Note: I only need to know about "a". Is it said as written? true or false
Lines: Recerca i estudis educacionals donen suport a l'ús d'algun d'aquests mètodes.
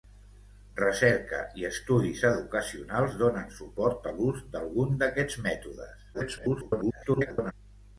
true